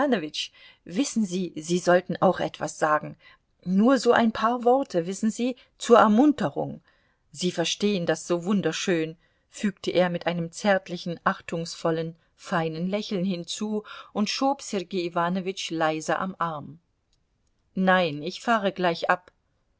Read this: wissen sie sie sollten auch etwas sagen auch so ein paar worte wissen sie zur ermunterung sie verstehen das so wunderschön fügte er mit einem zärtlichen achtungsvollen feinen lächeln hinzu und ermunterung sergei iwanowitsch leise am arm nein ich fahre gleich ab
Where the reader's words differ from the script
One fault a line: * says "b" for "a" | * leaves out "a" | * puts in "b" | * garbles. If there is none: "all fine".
* says "nur" for "auch"
* says "schob" for "ermunterung"